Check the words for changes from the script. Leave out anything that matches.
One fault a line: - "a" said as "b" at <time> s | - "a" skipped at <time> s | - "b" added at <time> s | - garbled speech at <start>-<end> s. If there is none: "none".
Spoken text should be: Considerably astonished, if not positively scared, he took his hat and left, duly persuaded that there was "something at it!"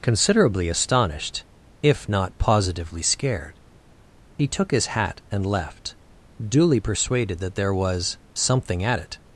none